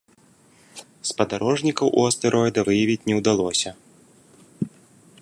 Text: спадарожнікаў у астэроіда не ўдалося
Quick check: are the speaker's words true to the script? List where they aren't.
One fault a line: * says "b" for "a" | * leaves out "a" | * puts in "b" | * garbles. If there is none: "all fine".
* puts in "выявіць"